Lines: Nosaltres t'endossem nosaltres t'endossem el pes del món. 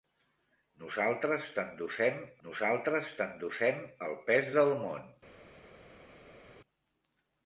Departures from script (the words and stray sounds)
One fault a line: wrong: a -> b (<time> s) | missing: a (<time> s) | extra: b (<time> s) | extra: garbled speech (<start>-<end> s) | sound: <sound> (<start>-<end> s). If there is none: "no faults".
no faults